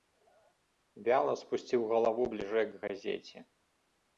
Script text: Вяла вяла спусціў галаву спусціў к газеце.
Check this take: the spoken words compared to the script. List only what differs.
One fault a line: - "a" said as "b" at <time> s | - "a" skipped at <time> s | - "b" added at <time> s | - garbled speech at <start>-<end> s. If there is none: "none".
- "вяла" skipped at 1.3 s
- "спусціў" said as "бліжэй" at 2.3 s